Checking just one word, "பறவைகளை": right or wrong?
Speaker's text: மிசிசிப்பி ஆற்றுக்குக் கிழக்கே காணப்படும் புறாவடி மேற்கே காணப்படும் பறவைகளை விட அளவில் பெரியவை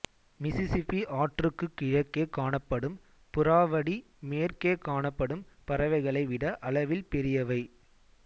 right